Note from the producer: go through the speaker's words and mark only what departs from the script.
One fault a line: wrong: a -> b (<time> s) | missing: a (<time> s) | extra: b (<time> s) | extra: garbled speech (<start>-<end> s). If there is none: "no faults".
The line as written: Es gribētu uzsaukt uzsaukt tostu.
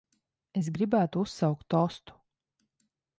missing: uzsaukt (1.7 s)